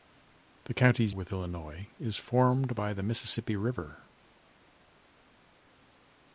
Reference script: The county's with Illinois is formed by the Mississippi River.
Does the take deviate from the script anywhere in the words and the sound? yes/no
no